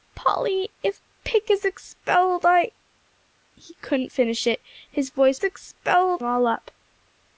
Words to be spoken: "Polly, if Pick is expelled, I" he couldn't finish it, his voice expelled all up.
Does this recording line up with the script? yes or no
yes